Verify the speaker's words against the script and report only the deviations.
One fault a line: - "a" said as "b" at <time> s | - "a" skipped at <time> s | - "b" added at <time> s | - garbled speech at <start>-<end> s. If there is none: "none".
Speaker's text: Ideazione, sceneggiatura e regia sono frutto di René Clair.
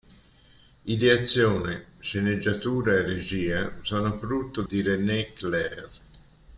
none